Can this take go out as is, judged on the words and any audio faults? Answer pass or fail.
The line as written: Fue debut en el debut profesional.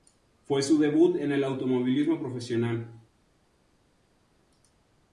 fail